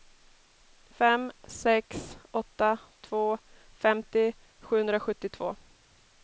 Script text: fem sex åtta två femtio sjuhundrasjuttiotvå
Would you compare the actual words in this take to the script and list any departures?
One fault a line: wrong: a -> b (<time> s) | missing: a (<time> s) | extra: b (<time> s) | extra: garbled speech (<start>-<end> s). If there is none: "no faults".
no faults